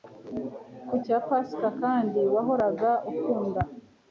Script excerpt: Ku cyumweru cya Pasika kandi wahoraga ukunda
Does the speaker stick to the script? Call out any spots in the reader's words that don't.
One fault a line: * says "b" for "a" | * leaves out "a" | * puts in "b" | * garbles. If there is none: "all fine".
* leaves out "cyumweru"